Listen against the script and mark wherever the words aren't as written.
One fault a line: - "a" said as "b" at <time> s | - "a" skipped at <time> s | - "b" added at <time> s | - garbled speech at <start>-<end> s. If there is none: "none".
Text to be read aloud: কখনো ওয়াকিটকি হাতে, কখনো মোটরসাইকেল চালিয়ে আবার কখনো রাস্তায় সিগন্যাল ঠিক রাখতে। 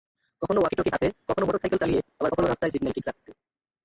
none